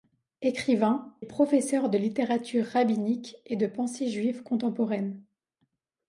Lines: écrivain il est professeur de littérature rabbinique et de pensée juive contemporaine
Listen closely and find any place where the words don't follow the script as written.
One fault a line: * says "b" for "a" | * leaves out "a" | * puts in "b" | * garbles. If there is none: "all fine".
* leaves out "il"